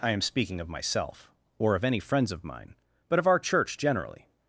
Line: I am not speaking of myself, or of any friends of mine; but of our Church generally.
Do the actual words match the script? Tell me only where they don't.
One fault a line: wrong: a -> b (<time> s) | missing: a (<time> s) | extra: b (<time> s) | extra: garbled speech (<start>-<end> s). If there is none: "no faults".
missing: not (0.2 s)